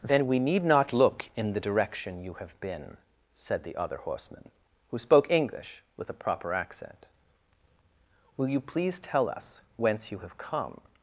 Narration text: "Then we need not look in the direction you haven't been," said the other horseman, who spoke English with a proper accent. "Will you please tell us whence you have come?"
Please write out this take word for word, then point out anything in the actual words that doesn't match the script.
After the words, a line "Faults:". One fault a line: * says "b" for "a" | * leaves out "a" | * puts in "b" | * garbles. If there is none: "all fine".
"Then we need not look in the direction you have been," said the other horseman, who spoke English with a proper accent. "Will you please tell us whence you have come?"
Faults:
* says "have" for "haven't"